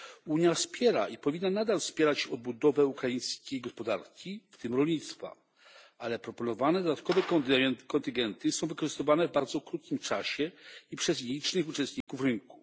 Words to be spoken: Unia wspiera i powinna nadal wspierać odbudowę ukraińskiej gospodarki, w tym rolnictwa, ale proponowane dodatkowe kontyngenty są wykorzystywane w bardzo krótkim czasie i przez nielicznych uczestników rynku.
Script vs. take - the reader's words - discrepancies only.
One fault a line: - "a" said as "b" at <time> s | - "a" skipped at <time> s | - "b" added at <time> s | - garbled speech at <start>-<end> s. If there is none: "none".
none